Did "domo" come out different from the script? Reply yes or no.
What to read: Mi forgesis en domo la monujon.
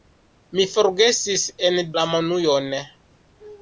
yes